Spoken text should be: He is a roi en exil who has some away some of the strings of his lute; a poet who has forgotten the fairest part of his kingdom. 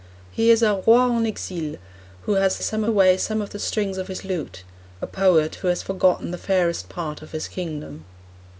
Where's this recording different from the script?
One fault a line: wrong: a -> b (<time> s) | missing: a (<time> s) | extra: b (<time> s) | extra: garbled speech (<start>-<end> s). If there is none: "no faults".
no faults